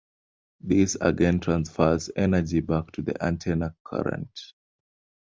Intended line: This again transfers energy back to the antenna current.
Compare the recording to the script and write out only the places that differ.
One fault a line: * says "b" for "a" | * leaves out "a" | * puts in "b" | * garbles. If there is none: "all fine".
all fine